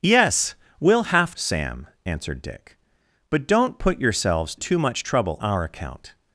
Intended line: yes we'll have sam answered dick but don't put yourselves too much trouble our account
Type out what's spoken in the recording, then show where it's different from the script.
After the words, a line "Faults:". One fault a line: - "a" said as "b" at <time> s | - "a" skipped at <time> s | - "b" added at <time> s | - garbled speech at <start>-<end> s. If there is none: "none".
yes we'll have sam answered dick but don't put yourselves too much trouble our account
Faults:
none